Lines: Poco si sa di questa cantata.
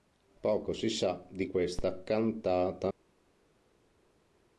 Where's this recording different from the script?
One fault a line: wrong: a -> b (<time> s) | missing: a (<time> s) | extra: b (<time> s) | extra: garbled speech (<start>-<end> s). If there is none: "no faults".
no faults